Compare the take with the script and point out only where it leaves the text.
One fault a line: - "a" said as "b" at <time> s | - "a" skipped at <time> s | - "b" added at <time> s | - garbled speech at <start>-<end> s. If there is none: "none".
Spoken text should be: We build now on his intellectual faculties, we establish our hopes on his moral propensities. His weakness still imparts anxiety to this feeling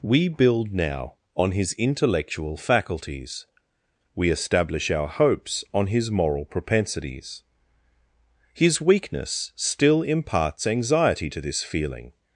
none